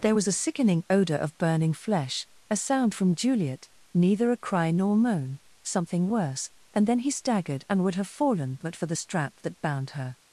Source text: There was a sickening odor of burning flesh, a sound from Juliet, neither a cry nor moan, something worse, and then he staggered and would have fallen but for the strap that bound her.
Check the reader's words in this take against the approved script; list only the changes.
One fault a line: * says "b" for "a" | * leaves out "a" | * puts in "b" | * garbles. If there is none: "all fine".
all fine